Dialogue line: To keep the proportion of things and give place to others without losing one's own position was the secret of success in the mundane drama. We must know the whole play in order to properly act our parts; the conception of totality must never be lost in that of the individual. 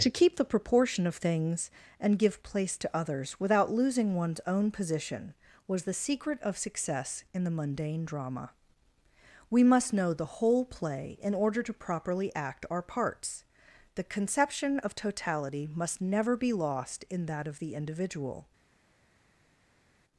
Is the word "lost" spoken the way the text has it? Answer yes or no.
yes